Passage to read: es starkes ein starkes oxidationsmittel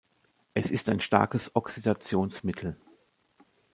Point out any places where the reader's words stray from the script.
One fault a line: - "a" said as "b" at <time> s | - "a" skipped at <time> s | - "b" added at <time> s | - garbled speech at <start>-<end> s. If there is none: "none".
- "starkes" said as "ist" at 0.7 s